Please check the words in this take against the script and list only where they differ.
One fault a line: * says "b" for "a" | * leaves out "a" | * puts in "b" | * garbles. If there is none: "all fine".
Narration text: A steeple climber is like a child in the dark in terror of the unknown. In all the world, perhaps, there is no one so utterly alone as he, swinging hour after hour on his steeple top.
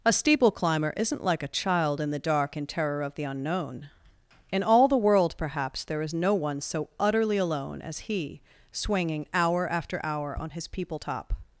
* says "isn't" for "is"
* says "people" for "steeple"